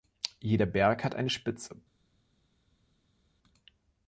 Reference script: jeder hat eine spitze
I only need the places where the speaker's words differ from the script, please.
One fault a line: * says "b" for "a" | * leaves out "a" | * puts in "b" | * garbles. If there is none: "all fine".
* puts in "berg"